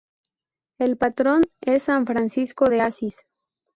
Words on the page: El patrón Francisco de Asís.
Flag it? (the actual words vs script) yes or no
yes